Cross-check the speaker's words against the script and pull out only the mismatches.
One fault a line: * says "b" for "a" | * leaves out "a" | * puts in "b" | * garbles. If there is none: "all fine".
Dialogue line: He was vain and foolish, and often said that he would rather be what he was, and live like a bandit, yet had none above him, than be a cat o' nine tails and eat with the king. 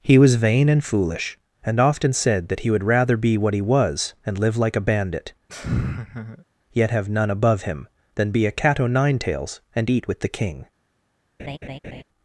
* says "have" for "had"